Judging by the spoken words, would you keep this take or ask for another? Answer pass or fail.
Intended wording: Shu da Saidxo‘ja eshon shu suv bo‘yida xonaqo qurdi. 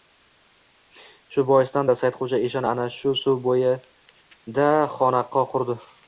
fail